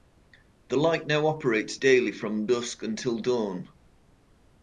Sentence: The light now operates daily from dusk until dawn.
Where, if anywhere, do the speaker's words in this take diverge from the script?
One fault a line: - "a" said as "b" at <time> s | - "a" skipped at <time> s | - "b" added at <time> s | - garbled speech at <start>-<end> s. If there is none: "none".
none